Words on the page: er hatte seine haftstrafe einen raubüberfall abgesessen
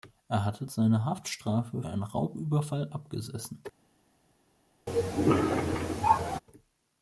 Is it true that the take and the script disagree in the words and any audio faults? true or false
true